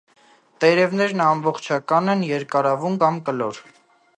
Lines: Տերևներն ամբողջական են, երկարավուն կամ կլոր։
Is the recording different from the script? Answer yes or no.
no